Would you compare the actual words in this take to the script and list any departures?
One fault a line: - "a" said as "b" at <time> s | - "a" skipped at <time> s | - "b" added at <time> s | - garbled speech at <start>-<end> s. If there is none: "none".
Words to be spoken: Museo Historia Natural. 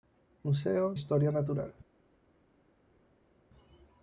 none